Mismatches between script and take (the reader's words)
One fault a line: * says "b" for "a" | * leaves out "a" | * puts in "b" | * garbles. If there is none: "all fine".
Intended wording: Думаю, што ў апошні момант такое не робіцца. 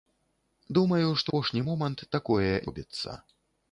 * leaves out "ў"
* leaves out "не"